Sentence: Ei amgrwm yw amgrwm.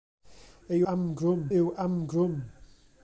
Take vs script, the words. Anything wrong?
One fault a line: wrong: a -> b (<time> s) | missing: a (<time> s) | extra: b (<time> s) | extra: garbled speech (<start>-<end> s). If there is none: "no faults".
no faults